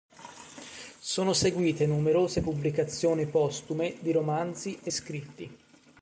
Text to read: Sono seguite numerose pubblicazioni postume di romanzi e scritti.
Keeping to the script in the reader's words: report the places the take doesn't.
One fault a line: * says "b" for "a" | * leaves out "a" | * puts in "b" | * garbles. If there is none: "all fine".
all fine